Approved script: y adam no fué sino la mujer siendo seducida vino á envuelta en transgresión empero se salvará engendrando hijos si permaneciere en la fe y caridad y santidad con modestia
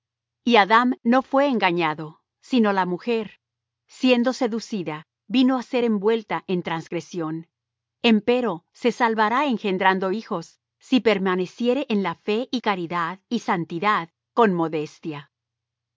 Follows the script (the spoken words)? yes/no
no